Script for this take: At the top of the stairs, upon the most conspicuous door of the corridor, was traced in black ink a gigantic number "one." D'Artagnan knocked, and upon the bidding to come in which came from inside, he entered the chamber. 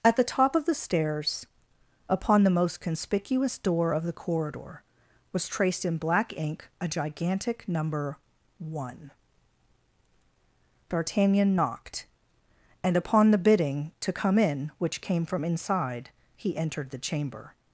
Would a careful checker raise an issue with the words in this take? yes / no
no